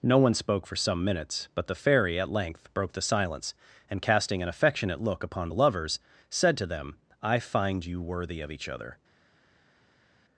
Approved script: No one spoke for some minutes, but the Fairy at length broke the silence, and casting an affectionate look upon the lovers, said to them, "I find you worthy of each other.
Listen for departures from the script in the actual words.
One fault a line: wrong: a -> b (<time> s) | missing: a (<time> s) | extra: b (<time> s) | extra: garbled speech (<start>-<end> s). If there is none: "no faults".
no faults